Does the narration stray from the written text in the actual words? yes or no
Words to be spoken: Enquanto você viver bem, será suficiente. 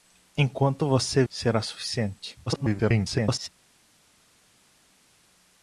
yes